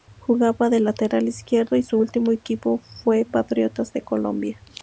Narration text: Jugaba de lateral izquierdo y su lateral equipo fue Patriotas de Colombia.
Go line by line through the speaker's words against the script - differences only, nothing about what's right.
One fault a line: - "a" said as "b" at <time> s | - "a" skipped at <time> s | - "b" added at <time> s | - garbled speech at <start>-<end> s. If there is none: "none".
- "lateral" said as "último" at 1.9 s